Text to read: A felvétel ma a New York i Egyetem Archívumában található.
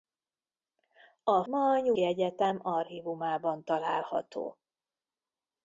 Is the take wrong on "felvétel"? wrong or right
wrong